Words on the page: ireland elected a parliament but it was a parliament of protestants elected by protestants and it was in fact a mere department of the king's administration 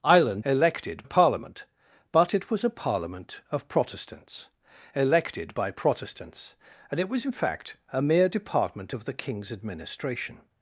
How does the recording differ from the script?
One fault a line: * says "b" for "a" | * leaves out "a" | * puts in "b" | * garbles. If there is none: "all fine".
all fine